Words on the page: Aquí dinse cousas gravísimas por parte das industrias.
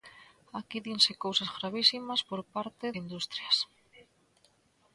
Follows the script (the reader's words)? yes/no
no